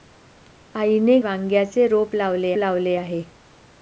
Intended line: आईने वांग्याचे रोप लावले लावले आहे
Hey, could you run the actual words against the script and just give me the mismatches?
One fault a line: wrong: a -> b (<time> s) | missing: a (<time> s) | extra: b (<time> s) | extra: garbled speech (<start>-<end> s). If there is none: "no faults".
no faults